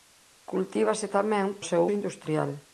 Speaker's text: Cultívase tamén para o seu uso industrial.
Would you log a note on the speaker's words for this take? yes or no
yes